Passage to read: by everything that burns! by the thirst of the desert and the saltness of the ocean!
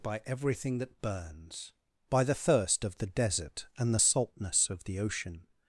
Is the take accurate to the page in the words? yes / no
yes